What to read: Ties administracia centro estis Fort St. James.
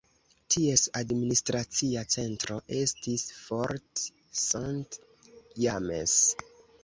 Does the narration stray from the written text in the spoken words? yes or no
no